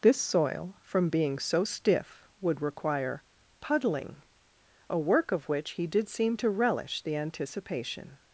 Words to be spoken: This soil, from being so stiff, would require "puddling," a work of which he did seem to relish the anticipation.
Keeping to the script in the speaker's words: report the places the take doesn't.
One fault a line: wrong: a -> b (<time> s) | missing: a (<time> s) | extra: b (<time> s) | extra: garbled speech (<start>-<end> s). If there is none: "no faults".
no faults